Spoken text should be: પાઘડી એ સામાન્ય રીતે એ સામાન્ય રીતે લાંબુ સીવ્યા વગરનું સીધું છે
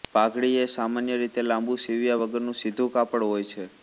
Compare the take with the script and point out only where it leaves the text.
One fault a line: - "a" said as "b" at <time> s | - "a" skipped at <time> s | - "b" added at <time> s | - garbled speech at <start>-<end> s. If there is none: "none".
- "એ સામાન્ય રીતે" skipped at 1.4 s
- "કાપડ હોય" added at 2.9 s